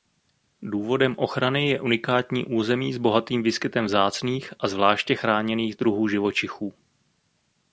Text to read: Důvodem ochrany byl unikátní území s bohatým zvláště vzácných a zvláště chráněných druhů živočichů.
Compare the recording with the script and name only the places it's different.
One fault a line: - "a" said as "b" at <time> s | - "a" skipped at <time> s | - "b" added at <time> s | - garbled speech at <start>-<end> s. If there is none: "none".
- "byl" said as "je" at 1.7 s
- "zvláště" said as "výskytem" at 3.4 s